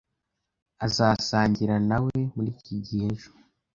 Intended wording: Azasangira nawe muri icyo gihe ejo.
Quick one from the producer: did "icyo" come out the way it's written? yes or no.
no